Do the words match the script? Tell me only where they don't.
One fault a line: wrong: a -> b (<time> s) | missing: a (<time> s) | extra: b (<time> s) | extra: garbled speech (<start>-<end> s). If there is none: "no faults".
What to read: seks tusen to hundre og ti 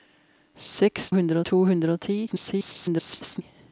wrong: tusen -> hundre (1.1 s)
extra: garbled speech (2.3-3.4 s)